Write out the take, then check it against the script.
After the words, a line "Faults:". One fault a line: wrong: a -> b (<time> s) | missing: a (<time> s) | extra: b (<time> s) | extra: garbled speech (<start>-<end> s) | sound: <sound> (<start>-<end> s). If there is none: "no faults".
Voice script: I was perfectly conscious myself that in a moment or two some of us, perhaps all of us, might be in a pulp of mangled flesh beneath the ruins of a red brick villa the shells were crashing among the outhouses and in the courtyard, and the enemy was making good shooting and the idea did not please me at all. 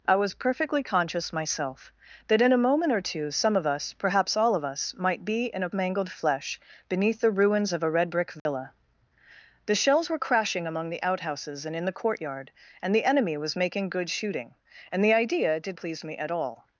I was perfectly conscious myself that in a moment or two some of us, perhaps all of us, might be in a mangled flesh beneath the ruins of a red brick villa the shells were crashing among the outhouses and in the courtyard, and the enemy was making good shooting and the idea did please me at all.
Faults:
missing: pulp of (5.7 s)
sound: dropout (8.4-8.5 s)
missing: not (15.8 s)